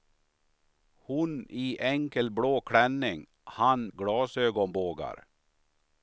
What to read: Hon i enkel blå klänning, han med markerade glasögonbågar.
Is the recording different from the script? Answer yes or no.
yes